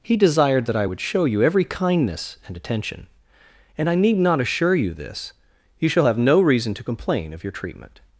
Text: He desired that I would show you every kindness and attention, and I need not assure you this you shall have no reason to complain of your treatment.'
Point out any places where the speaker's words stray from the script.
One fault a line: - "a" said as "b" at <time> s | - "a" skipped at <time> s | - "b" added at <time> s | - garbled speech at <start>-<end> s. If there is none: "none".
none